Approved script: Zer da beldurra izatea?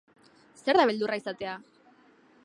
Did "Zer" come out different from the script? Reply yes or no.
no